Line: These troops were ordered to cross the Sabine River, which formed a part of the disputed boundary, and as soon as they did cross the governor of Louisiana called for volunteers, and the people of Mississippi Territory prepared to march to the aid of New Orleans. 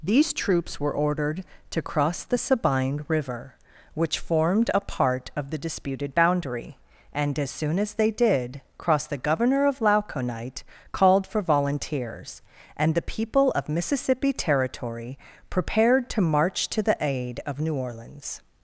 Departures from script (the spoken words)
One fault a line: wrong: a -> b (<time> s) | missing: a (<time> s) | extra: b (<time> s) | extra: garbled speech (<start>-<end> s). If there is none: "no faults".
wrong: Louisiana -> Lauconite (9.8 s)